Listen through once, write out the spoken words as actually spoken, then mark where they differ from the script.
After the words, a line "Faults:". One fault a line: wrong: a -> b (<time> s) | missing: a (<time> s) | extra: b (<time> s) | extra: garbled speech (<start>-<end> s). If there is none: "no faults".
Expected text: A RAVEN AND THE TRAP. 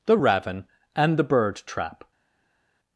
THE RAVEN AND THE BIRD TRAP.
Faults:
wrong: A -> THE (0.1 s)
extra: BIRD (1.2 s)